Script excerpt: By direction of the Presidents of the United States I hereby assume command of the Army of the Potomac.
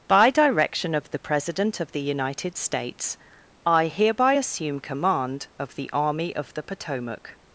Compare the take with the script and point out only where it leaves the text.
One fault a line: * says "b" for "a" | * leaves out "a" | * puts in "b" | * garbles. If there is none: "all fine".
* says "President" for "Presidents"